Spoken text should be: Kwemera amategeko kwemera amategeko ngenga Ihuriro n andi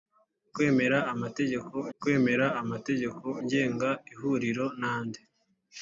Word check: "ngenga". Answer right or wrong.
right